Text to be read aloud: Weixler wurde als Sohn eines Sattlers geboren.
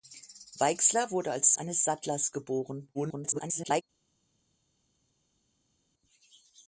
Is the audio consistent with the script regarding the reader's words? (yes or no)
no